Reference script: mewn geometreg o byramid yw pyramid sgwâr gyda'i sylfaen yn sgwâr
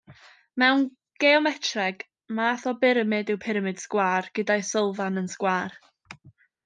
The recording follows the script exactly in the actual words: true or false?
false